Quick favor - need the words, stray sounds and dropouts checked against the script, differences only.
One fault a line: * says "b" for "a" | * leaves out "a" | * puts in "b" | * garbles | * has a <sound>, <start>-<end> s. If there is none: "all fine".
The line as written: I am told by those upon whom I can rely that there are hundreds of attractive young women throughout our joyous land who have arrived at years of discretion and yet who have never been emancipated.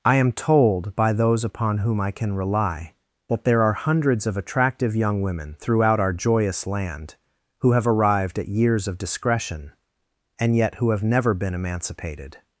all fine